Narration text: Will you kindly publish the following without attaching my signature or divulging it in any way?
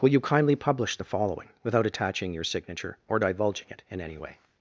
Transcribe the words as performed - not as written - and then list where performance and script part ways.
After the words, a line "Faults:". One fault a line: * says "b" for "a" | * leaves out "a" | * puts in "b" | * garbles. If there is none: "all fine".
Will you kindly publish the following without attaching your signature or divulging it in any way?
Faults:
* says "your" for "my"